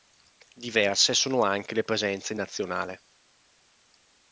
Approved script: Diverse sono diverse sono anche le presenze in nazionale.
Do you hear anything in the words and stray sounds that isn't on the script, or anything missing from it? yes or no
yes